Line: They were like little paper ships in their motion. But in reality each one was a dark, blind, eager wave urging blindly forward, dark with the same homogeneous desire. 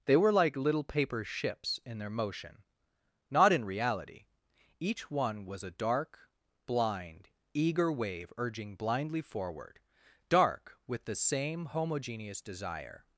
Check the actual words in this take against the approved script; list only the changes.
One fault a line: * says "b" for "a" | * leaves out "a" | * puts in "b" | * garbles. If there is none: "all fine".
* says "Not" for "But"